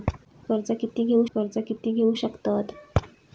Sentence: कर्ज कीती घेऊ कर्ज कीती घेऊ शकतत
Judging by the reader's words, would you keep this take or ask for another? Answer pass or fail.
pass